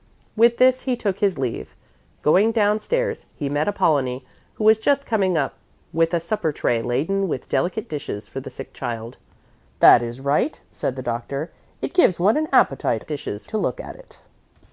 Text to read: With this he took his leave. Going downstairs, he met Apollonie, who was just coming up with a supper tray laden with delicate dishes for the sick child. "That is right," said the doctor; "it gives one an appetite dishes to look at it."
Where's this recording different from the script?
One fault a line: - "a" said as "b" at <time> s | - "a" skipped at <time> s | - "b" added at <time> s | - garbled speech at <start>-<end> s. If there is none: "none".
none